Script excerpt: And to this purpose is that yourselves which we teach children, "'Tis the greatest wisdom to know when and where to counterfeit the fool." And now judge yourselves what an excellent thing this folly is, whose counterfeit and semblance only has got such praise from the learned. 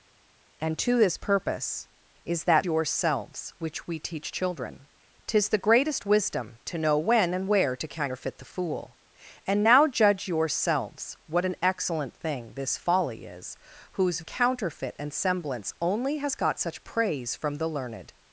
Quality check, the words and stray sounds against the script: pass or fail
pass